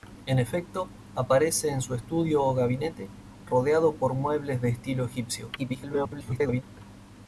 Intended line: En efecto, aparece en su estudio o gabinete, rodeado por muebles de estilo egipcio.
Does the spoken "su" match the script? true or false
true